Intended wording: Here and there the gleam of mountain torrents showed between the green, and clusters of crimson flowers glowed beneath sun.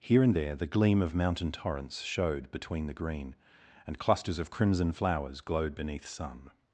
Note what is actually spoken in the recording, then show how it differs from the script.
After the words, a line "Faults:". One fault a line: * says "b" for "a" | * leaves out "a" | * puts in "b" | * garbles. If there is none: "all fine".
Here and there the gleam of mountain torrents showed between the green, and clusters of crimson flowers glowed beneath sun.
Faults:
all fine